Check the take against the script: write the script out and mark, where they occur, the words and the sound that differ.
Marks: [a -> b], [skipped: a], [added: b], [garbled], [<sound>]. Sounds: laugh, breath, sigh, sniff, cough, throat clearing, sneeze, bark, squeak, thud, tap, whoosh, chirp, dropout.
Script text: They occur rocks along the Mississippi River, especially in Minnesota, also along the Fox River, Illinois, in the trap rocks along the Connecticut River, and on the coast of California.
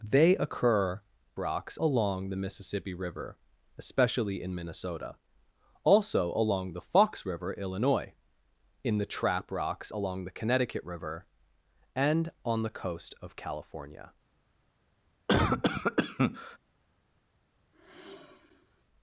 They occur rocks along the Mississippi River, especially in Minnesota, also along the Fox River, Illinois, in the trap rocks along the Connecticut River, and on the coast of California. [cough] [sigh]